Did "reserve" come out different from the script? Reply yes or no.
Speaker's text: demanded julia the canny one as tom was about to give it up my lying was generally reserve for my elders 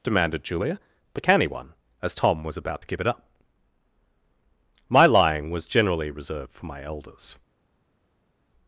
yes